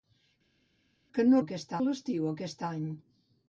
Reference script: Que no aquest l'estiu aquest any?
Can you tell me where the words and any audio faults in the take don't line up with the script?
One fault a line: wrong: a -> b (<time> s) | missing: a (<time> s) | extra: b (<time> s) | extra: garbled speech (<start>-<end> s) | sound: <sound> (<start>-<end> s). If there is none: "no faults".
no faults